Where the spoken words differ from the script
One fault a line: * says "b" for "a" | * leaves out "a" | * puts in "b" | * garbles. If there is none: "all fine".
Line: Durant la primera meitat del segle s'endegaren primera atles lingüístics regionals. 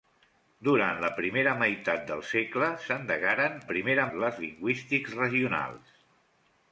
all fine